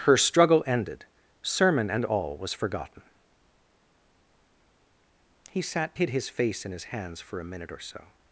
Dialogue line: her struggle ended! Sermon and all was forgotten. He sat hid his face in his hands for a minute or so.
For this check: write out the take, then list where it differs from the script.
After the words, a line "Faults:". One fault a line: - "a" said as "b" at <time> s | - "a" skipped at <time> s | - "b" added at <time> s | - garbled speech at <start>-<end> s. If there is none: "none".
her struggle ended! Sermon and all was forgotten. He sat hid his face in his hands for a minute or so.
Faults:
none